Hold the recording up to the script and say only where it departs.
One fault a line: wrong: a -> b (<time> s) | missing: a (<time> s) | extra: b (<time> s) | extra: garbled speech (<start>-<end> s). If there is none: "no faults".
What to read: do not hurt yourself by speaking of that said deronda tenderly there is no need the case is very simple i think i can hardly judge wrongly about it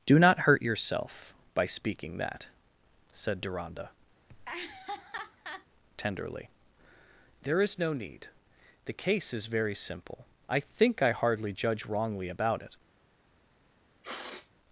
missing: of (2.2 s)
missing: can (11.1 s)